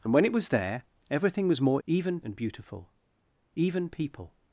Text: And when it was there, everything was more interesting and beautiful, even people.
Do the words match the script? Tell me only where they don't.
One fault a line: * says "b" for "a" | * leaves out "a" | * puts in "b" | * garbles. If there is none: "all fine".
* says "even" for "interesting"